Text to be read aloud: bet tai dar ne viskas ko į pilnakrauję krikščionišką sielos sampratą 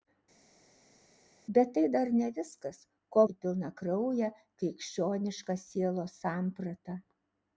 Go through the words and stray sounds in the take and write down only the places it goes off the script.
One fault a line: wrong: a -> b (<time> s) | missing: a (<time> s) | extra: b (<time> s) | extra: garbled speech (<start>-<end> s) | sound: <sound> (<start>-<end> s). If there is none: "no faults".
no faults